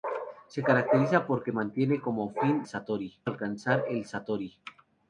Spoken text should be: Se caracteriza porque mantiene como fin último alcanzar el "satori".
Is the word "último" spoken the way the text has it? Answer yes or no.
no